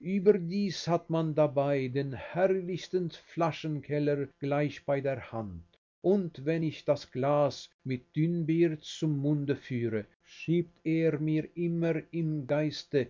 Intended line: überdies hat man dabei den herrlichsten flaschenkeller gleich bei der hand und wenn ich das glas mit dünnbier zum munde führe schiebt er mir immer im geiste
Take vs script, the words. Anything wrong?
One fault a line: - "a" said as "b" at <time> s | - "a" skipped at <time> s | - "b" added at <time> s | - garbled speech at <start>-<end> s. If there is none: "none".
none